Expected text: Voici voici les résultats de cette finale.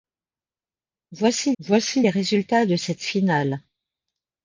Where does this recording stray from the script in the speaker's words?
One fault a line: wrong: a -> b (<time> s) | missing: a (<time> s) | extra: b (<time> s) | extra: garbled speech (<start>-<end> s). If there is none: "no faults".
no faults